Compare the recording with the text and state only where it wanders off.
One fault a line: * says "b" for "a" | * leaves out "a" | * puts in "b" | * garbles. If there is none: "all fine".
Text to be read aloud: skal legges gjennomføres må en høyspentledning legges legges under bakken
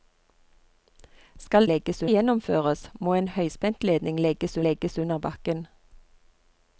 all fine